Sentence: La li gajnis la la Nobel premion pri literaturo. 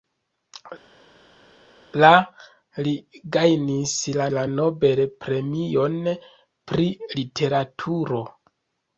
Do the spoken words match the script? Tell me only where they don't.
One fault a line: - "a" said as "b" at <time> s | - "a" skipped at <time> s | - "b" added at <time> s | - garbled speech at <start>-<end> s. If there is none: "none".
none